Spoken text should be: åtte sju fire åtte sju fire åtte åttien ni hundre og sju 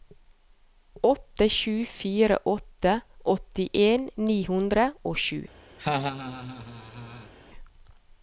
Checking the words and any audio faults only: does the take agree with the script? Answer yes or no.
no